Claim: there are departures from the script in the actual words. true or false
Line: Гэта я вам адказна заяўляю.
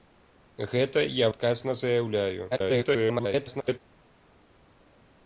true